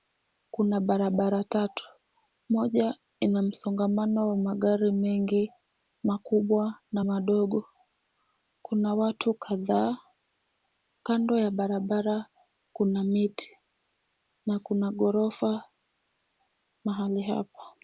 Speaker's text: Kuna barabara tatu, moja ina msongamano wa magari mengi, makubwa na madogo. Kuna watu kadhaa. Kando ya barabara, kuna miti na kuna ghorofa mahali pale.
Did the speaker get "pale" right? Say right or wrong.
wrong